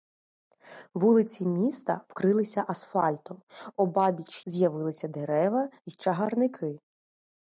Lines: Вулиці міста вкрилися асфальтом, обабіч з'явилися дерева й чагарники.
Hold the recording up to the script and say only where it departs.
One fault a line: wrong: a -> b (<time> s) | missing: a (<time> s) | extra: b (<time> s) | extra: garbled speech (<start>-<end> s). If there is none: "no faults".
no faults